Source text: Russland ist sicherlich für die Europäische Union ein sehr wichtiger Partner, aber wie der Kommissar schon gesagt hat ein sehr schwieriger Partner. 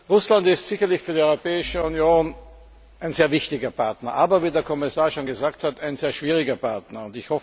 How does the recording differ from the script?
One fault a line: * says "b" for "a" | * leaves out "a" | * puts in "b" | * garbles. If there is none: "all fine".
all fine